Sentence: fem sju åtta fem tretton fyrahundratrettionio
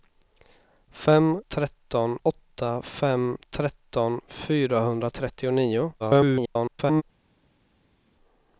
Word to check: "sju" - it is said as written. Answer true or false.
false